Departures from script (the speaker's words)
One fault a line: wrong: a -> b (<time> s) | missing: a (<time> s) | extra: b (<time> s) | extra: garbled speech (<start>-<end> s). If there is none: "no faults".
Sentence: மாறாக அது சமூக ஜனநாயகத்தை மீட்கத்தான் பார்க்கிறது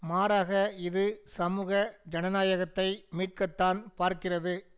wrong: அது -> இது (0.8 s)